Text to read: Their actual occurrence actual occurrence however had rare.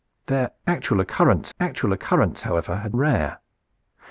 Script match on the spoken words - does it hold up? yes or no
yes